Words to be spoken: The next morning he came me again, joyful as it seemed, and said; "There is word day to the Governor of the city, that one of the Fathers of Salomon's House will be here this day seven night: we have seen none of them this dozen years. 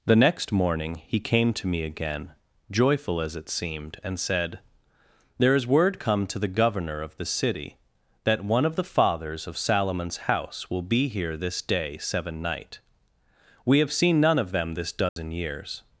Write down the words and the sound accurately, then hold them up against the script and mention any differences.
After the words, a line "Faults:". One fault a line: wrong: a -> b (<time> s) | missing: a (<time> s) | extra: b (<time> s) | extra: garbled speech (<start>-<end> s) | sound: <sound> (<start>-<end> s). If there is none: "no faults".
The next morning he came to me again, joyful as it seemed, and said; "There is word come to the Governor of the city, that one of the Fathers of Salomon's House will be here this day seven night: we have seen none of them this dozen years.
Faults:
extra: to (1.5 s)
wrong: day -> come (6.0 s)
sound: dropout (15.1-15.2 s)